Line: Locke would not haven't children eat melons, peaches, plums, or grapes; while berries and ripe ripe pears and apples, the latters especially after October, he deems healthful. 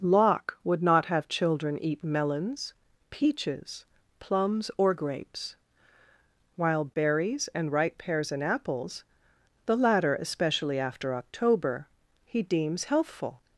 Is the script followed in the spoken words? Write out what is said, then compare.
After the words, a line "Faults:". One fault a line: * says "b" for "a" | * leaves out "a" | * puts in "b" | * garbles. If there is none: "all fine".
Locke would not have children eat melons, peaches, plums, or grapes; while berries and ripe pears and apples, the latter especially after October, he deems healthful.
Faults:
* says "have" for "haven't"
* leaves out "ripe"
* says "latter" for "latters"